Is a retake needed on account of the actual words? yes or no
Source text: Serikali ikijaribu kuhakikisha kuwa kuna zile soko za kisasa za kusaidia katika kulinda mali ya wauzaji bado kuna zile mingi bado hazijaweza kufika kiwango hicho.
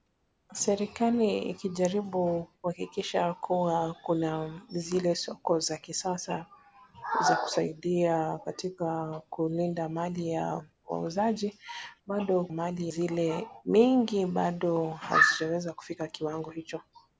yes